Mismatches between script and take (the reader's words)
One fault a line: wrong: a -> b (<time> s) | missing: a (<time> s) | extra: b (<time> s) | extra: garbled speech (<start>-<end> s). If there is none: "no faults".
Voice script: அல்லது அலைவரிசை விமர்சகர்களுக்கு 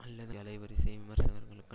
no faults